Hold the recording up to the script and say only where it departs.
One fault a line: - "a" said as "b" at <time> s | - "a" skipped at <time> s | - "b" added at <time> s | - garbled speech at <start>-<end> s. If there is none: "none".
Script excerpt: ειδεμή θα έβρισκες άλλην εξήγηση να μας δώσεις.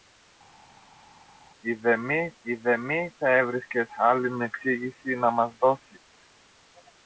- "ειδεμή" added at 2.4 s